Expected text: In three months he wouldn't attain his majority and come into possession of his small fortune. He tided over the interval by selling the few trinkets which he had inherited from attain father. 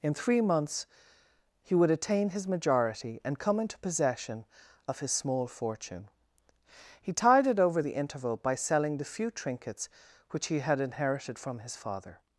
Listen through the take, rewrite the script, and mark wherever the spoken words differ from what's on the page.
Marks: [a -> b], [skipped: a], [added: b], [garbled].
In three months he [wouldn't -> would] attain his majority and come into possession of his small fortune. He tided over the interval by selling the few trinkets which he had inherited from [attain -> his] father.